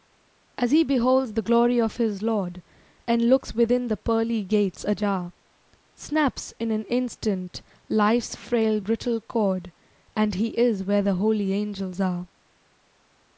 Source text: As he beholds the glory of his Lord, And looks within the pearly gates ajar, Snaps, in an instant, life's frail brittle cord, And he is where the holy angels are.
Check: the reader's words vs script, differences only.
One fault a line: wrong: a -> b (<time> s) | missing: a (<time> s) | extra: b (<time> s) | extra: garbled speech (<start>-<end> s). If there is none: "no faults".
no faults